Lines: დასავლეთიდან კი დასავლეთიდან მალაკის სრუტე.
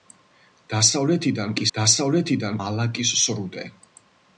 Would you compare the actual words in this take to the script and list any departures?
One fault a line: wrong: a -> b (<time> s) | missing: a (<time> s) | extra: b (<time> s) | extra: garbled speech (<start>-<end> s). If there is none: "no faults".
no faults